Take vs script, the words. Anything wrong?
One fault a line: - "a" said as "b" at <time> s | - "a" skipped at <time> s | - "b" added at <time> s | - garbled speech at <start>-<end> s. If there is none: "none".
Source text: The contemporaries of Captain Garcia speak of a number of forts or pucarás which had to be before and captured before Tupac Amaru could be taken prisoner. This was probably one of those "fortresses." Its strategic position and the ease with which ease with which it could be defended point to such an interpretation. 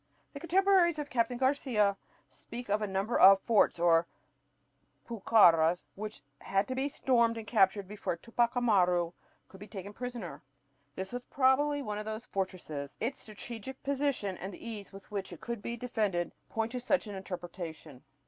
- "before" said as "stormed" at 6.9 s
- "ease with which" skipped at 15.3 s